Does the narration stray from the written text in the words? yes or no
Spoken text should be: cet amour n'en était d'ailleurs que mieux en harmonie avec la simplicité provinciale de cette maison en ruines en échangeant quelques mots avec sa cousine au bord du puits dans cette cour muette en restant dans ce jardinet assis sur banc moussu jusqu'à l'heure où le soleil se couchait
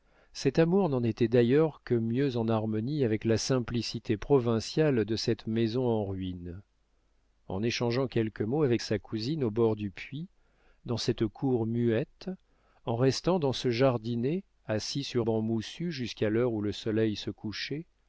no